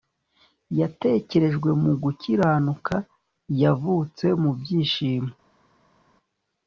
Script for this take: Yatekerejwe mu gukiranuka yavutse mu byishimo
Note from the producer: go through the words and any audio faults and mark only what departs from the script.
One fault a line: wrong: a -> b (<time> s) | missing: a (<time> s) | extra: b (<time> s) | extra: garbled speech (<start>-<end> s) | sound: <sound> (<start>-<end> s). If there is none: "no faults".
no faults